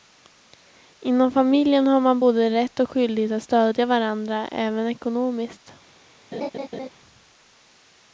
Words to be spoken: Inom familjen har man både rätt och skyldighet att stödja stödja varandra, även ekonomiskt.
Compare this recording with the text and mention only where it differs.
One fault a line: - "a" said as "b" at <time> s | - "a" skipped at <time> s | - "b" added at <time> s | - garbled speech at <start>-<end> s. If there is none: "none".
- "stödja" skipped at 3.9 s